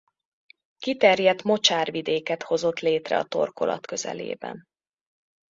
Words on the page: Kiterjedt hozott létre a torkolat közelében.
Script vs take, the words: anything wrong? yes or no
yes